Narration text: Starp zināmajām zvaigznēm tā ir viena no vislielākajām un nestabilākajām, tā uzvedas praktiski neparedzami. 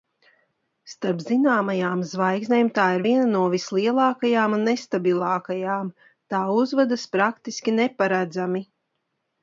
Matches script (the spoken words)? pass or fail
pass